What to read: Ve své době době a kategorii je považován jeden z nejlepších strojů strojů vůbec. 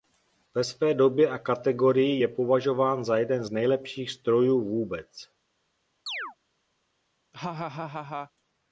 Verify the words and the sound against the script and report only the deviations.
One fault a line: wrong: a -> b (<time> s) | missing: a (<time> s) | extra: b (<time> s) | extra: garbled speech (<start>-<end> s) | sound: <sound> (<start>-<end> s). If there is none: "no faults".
missing: době (1.3 s)
extra: za (3.0 s)
missing: strojů (4.6 s)
sound: chirp (6.1-6.4 s)
sound: laugh (7.3-8.3 s)